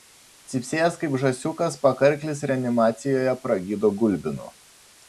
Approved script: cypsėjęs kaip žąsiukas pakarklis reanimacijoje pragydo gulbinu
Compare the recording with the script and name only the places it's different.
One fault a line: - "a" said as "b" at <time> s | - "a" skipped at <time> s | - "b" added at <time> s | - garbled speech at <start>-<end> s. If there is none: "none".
none